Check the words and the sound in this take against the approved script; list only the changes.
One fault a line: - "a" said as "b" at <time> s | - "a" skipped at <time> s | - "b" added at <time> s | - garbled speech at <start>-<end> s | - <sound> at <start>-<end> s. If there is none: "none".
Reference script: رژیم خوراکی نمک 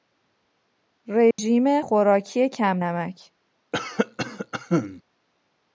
- dropout at 1.3-1.4 s
- "کم" added at 2.5 s
- cough at 3.7-5.0 s